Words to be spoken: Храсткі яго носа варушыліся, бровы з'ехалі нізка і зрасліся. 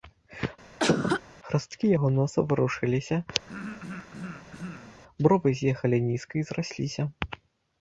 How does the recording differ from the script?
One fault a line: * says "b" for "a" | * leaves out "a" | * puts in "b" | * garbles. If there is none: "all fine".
all fine